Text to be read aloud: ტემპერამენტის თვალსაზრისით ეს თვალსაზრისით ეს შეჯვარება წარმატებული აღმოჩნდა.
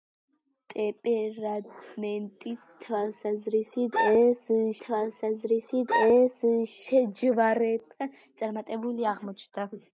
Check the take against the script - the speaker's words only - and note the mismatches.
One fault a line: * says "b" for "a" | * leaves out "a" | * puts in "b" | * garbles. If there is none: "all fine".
all fine